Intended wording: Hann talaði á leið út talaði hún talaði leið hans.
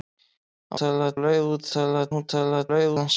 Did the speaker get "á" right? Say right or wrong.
right